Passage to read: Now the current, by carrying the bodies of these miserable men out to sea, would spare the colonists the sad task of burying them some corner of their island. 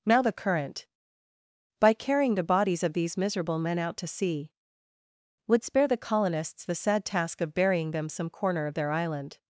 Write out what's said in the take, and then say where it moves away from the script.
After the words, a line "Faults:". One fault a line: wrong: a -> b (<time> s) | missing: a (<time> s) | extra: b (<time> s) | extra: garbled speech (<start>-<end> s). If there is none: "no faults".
Now the current, by carrying the bodies of these miserable men out to sea, would spare the colonists the sad task of burying them some corner of their island.
Faults:
no faults